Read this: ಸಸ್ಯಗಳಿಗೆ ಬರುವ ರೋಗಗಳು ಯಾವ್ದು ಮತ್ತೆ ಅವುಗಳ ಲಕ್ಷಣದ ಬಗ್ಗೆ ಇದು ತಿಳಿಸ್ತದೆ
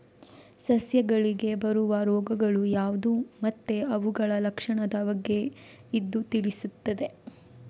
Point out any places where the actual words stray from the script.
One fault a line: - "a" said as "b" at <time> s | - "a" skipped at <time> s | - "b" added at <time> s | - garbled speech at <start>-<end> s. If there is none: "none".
none